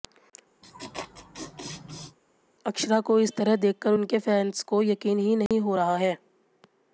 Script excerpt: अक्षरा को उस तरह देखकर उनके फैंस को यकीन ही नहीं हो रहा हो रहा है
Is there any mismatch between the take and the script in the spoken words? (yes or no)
yes